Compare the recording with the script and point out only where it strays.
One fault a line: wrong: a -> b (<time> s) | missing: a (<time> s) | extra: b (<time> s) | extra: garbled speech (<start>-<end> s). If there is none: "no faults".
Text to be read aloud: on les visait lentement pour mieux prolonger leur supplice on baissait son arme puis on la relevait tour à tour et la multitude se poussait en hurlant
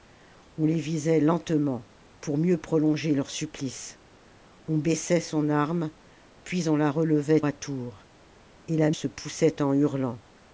missing: tour (7.4 s)
missing: multitude (8.9 s)